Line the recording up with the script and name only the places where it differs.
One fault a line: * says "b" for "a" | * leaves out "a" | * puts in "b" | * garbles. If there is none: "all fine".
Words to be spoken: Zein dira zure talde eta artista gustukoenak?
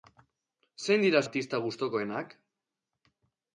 * leaves out "zure talde eta"